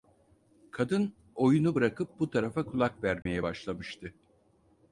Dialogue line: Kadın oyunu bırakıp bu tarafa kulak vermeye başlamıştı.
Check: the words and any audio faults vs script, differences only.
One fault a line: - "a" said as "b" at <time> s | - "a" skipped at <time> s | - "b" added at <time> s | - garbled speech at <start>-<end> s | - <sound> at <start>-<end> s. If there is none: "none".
- dropout at 3.2-3.3 s